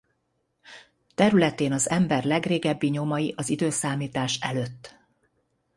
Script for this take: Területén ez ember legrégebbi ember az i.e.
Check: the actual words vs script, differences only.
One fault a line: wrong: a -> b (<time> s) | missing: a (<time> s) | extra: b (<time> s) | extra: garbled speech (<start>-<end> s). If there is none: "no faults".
wrong: ez -> az (1.7 s)
wrong: ember -> nyomai (2.9 s)